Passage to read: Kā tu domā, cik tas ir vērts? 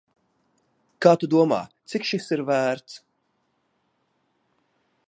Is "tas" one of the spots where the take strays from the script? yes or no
yes